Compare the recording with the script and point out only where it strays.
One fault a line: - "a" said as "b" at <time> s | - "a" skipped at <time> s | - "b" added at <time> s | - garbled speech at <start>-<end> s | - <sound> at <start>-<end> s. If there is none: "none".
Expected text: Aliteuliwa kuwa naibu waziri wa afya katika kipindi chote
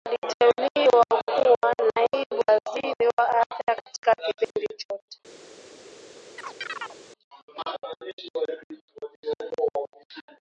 - dropout at 4.4-4.5 s
- chirp at 6.4-7.0 s